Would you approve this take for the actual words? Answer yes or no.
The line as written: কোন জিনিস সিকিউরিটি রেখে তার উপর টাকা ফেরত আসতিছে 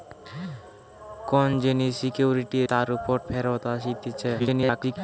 no